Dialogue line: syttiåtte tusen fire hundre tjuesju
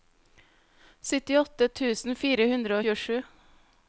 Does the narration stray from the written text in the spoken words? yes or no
no